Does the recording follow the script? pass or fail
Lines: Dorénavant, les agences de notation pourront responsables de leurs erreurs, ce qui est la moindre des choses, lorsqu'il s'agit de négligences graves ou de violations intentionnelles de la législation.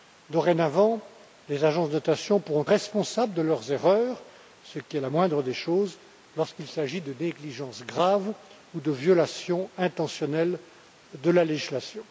pass